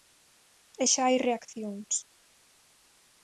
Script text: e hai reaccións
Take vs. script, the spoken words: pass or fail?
fail